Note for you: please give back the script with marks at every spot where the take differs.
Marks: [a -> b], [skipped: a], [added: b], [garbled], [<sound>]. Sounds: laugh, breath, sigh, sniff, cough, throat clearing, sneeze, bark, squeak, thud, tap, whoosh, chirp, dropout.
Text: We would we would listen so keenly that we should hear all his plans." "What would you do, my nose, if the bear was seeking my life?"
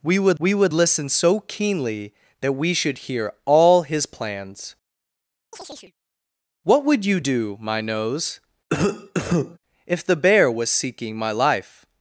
We would we would listen so keenly that we should hear all his plans." [chirp] "What would you do, my nose, [cough] if the bear was seeking my life?"